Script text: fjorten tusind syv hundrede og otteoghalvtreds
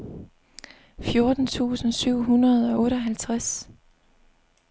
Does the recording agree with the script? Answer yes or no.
yes